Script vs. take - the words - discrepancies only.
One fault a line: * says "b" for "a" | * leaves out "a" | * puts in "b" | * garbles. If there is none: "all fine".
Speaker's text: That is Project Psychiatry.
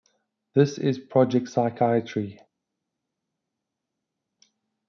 * says "This" for "That"